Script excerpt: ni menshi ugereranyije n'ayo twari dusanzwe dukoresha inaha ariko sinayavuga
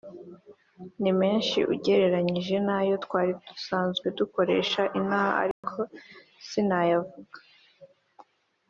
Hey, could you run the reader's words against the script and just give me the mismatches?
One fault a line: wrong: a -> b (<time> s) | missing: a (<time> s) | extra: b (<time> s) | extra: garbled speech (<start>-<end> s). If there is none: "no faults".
no faults